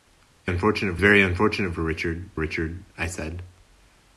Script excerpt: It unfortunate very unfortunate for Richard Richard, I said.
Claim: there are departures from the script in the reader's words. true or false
false